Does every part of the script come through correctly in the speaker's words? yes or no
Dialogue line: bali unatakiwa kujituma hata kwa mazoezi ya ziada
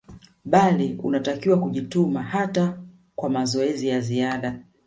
yes